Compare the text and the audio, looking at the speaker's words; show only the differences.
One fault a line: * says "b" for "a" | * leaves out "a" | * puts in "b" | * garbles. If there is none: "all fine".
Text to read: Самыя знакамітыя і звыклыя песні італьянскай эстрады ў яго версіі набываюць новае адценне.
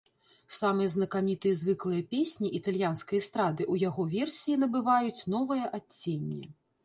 all fine